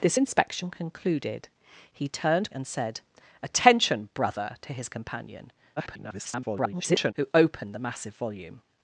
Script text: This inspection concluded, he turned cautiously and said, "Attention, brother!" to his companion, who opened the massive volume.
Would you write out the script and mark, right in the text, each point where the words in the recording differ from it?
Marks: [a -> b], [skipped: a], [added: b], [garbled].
This inspection concluded, he turned [skipped: cautiously] and said, "Attention, brother!" to his companion, [garbled] who opened the massive volume.